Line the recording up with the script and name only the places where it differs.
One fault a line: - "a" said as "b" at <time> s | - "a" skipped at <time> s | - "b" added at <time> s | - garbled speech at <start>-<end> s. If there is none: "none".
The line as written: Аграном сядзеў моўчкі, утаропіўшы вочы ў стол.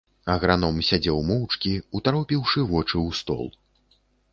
none